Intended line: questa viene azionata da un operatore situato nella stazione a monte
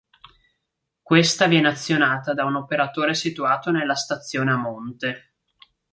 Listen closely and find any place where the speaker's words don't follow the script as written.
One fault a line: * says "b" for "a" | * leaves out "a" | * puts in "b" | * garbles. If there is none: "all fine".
all fine